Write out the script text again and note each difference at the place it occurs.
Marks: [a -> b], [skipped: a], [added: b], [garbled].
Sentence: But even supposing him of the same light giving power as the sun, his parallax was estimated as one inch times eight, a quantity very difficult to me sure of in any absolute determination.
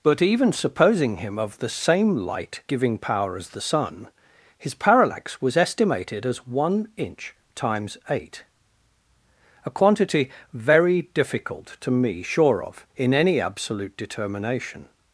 But even supposing him of the same light giving power as the sun, his parallax was estimated as one inch times eight, a quantity very difficult to me sure of in any absolute determination.